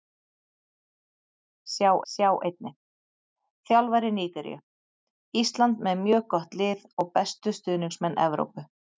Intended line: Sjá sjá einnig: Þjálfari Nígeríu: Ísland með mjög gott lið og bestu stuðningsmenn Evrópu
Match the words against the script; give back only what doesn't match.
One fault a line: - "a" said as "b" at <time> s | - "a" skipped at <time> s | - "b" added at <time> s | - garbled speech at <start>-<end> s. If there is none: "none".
none